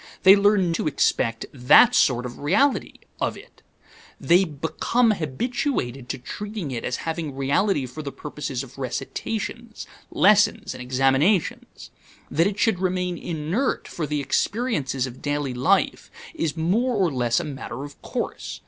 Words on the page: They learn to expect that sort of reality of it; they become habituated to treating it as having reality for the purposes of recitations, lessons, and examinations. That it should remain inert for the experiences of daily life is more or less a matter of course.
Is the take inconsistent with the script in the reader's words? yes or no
no